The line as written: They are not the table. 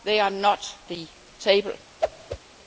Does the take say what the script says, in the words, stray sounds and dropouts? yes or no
no